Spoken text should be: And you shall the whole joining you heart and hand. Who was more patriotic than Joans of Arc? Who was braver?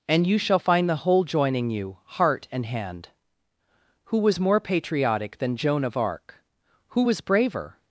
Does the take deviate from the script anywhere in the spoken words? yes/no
yes